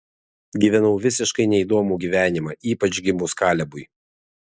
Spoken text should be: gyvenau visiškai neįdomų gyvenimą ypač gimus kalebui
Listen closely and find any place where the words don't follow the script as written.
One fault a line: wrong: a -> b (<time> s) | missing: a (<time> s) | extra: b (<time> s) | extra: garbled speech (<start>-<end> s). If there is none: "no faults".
no faults